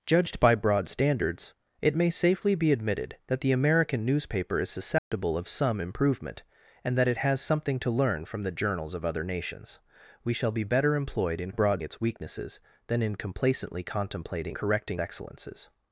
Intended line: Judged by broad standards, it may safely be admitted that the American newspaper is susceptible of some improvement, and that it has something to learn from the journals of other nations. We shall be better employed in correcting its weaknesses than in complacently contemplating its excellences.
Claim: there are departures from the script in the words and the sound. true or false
true